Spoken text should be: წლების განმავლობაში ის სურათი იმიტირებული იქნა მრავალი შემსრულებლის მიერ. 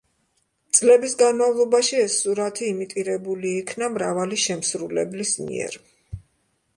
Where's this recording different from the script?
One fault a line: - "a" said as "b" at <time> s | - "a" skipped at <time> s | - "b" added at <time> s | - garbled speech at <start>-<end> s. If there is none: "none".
- "ის" said as "ეს" at 2.0 s